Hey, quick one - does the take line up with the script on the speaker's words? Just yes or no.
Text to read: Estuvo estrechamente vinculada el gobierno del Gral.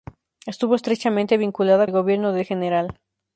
yes